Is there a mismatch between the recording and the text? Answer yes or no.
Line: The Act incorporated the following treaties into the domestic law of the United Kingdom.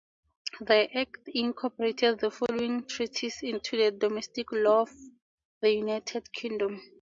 no